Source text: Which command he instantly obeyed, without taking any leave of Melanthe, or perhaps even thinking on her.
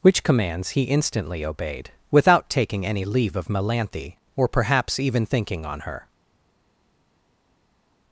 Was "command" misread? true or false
true